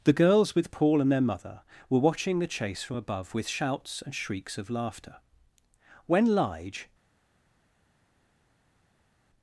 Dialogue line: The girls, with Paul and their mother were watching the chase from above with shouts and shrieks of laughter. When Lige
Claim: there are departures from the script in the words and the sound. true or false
false